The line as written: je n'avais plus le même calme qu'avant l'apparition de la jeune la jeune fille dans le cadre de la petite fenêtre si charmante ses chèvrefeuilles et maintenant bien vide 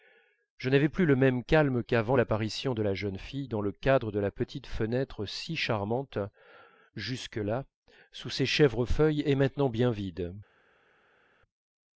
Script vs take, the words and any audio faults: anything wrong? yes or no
yes